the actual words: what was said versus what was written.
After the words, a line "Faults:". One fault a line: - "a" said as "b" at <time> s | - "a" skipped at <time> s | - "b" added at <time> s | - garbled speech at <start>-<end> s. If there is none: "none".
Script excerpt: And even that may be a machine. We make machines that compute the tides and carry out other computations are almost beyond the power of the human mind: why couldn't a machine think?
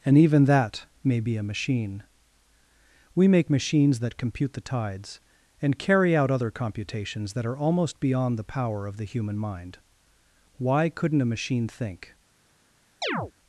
And even that may be a machine. We make machines that compute the tides and carry out other computations that are almost beyond the power of the human mind: why couldn't a machine think?
Faults:
- "that" added at 7.3 s